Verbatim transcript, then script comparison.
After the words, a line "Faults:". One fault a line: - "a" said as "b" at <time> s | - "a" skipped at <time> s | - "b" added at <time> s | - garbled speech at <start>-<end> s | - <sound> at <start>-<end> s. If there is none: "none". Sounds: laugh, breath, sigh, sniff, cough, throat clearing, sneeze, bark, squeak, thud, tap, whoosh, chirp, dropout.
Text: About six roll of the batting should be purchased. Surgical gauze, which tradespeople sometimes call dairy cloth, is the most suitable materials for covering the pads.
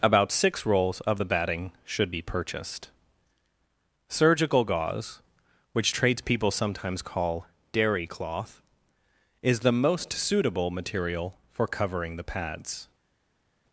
About six rolls of the batting should be purchased. Surgical gauze, which tradespeople sometimes call dairy cloth, is the most suitable material for covering the pads.
Faults:
- "roll" said as "rolls" at 0.7 s
- "materials" said as "material" at 10.7 s